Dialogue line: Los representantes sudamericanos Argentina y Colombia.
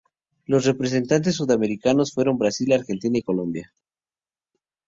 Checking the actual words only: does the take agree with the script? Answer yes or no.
no